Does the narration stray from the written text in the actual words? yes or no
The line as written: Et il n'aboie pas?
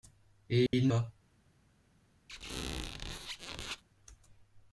yes